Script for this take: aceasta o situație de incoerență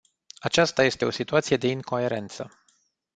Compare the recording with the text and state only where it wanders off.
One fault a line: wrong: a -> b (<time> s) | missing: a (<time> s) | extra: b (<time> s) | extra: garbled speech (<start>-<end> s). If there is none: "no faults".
extra: este (0.8 s)